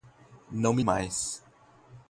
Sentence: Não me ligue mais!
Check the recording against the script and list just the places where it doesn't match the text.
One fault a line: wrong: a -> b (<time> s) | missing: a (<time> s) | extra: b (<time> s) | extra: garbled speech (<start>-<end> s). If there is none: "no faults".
missing: ligue (0.8 s)